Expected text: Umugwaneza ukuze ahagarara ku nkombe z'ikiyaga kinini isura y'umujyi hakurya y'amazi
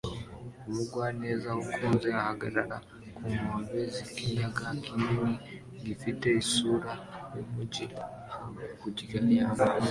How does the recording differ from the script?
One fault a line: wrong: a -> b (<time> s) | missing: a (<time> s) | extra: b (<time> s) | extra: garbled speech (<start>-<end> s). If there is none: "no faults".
extra: gifite (5.8 s)